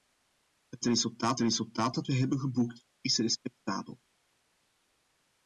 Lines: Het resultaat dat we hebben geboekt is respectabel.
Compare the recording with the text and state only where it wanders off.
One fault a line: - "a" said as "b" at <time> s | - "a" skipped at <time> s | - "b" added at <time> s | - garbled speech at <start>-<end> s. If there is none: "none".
- "resultaat" added at 1.4 s